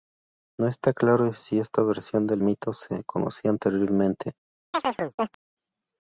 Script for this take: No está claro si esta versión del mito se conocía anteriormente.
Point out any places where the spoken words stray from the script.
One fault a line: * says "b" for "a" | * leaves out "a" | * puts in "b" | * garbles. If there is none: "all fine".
all fine